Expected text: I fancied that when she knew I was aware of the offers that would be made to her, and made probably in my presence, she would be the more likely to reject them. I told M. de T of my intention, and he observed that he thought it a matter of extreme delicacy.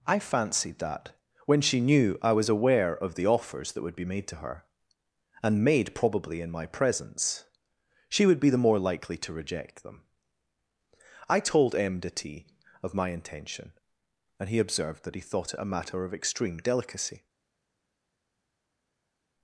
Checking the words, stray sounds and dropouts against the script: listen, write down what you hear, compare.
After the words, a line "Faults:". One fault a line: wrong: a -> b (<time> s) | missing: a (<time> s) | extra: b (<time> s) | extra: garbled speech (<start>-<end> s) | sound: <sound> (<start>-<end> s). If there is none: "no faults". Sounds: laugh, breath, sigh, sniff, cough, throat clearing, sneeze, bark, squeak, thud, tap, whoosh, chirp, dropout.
I fancied that when she knew I was aware of the offers that would be made to her, and made probably in my presence, she would be the more likely to reject them. I told M. de T of my intention, and he observed that he thought it a matter of extreme delicacy.
Faults:
no faults